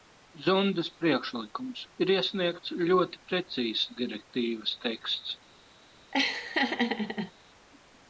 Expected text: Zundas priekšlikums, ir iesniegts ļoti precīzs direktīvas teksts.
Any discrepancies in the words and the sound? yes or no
yes